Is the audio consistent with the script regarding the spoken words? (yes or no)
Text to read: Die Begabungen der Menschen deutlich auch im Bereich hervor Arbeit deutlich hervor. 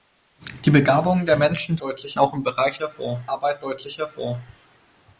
yes